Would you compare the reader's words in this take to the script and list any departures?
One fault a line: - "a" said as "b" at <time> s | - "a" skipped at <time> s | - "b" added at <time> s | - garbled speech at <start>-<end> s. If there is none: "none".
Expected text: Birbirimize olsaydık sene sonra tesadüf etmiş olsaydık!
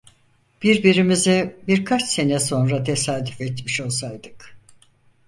- "olsaydık" said as "birkaç" at 1.7 s